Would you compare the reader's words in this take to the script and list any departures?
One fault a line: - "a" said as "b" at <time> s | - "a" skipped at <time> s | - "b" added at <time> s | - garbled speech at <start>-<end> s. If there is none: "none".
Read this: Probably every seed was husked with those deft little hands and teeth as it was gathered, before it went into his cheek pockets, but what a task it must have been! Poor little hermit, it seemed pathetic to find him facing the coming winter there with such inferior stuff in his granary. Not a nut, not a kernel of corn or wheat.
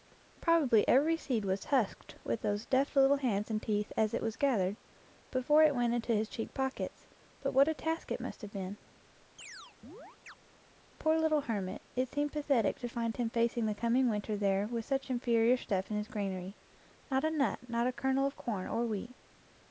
none